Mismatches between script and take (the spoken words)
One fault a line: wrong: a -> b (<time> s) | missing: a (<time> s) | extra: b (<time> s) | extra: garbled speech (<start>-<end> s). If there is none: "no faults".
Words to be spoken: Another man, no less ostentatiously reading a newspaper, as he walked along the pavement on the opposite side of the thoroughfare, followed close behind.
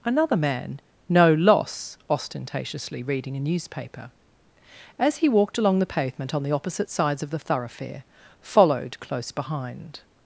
wrong: less -> loss (1.3 s)
wrong: side -> sides (6.9 s)